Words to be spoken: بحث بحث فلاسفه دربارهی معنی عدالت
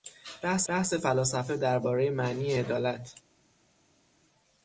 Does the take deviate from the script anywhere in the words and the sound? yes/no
no